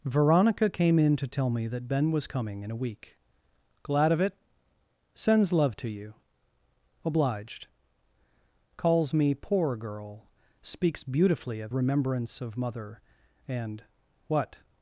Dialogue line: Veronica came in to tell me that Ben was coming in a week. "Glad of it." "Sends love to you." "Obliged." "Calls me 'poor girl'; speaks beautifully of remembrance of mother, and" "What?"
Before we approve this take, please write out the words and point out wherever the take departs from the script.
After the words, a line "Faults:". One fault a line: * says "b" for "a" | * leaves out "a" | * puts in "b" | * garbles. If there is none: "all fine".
Veronica came in to tell me that Ben was coming in a week. "Glad of it." "Sends love to you." "Obliged." "Calls me 'poor girl'; speaks beautifully of remembrance of mother, and" "What?"
Faults:
all fine